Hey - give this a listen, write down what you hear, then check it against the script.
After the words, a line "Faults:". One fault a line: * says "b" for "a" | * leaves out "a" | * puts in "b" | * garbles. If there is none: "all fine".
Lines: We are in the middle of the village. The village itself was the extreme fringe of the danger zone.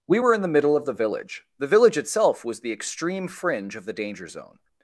We were in the middle of the village. The village itself was the extreme fringe of the danger zone.
Faults:
* says "were" for "are"